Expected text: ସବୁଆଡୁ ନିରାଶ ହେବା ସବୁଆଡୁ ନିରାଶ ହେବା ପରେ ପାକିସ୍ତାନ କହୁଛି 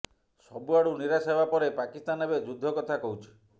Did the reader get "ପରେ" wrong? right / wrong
wrong